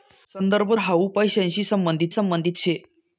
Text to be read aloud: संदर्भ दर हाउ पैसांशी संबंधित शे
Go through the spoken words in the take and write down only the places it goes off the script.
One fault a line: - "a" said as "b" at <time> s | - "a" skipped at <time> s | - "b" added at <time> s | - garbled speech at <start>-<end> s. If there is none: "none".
- "दर" skipped at 0.7 s
- "संबंधित" added at 2.1 s